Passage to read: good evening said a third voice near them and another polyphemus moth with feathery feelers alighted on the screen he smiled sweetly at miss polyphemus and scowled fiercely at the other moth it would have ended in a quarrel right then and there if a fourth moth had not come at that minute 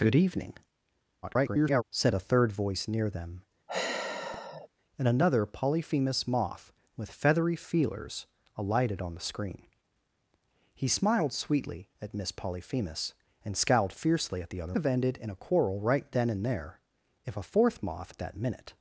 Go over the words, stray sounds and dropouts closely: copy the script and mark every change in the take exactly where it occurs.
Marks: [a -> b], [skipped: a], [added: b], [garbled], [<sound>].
good evening [garbled] said a third voice near them [sigh] and another polyphemus moth with feathery feelers alighted on the screen he smiled sweetly at miss polyphemus and scowled fiercely at the other [skipped: moth it would] have ended in a quarrel right then and there if a fourth moth [skipped: had not come] at that minute